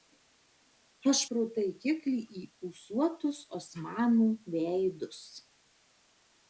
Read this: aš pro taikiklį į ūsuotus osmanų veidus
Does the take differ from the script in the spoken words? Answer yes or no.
no